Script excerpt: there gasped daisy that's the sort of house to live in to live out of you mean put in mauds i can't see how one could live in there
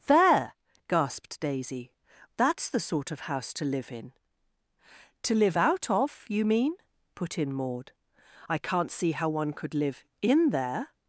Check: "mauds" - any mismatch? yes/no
yes